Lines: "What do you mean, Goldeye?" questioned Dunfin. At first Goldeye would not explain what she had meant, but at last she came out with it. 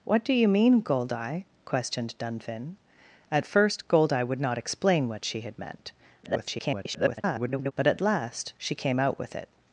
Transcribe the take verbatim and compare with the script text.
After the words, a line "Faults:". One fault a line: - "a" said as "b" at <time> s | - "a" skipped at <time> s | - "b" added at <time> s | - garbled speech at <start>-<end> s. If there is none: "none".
"What do you mean, Goldeye?" questioned Dunfin. At first Goldeye would not explain what she had meant, [garbled] but at last she came out with it.
Faults:
- garbled speech at 6.2-7.7 s